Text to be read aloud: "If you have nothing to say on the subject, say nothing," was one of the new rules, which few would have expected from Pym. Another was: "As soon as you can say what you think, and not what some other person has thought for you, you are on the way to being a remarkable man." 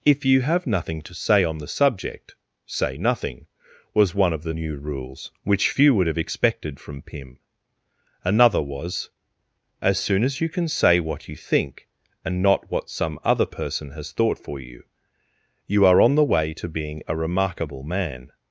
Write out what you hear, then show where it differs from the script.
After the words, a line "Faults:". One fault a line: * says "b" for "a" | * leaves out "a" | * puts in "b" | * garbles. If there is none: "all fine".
"If you have nothing to say on the subject, say nothing," was one of the new rules, which few would have expected from Pym. Another was: "As soon as you can say what you think, and not what some other person has thought for you, you are on the way to being a remarkable man."
Faults:
all fine